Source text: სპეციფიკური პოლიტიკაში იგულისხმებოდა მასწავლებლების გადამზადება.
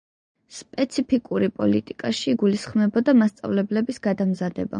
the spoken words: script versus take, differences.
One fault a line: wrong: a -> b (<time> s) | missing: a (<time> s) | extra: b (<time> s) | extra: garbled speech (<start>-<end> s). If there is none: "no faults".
no faults